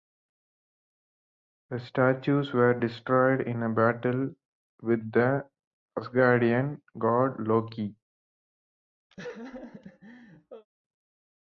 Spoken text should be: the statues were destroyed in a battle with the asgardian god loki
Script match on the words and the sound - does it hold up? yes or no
no